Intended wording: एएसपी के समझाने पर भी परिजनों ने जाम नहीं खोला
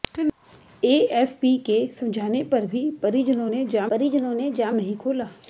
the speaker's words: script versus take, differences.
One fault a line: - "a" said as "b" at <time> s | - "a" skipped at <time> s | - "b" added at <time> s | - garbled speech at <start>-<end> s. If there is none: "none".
- "परिजनों ने जाम" added at 3.9 s